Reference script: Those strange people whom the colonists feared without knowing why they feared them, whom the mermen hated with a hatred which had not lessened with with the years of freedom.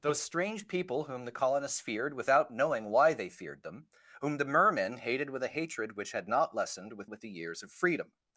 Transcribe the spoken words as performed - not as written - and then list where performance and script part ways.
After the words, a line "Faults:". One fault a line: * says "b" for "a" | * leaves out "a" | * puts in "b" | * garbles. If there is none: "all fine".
Those strange people whom the colonists feared without knowing why they feared them, whom the mermen hated with a hatred which had not lessened with with the years of freedom.
Faults:
all fine